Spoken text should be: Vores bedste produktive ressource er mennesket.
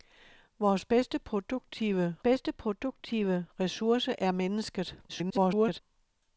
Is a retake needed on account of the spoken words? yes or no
yes